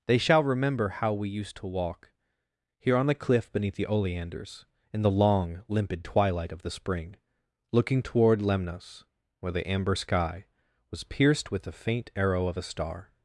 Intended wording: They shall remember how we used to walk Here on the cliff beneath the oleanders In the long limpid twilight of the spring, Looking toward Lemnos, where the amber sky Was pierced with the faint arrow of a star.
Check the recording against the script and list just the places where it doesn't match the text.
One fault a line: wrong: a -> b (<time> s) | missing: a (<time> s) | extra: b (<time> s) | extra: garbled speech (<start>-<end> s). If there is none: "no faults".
no faults